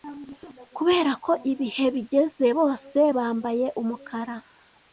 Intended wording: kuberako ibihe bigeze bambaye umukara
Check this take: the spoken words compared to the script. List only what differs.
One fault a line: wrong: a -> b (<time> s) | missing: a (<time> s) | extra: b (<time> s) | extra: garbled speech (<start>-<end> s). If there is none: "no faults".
extra: bose (2.6 s)